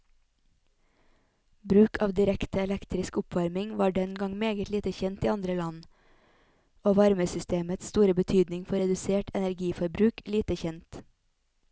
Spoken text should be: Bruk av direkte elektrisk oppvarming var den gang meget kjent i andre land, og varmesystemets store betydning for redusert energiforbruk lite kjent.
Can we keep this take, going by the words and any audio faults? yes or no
no